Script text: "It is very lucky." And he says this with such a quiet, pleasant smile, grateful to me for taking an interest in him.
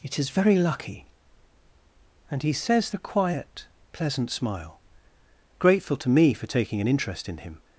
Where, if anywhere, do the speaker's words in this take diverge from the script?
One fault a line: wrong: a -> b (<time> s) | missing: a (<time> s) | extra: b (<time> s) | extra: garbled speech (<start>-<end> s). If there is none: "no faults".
missing: this with such (2.9 s)